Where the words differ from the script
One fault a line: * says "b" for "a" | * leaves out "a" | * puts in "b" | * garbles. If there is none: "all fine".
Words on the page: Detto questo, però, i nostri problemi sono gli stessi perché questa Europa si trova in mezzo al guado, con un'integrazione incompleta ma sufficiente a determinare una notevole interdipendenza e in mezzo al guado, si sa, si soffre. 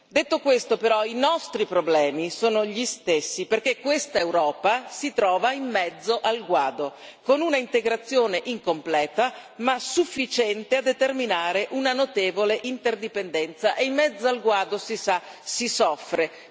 all fine